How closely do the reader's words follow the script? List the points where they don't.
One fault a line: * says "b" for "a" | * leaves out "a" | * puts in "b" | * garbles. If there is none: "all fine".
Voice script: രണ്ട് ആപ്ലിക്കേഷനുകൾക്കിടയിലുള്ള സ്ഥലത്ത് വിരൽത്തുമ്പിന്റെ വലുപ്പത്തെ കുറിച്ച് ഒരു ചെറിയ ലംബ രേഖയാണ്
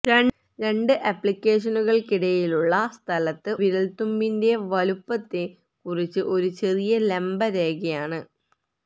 all fine